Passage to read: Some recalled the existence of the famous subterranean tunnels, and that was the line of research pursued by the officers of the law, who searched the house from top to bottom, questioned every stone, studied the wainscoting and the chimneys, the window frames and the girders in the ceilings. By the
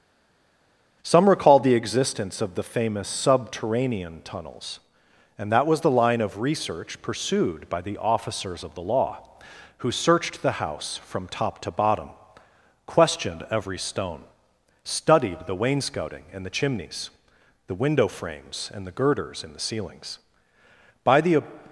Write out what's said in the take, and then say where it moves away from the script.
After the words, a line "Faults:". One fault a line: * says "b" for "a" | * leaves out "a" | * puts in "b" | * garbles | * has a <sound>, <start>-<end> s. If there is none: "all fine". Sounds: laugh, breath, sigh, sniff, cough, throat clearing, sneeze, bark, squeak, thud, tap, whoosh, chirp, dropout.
Some recalled the existence of the famous subterranean tunnels, and that was the line of research pursued by the officers of the law, who searched the house from top to bottom, questioned every stone, studied the wainscoting and the chimneys, the window frames and the girders in the ceilings. By the
Faults:
all fine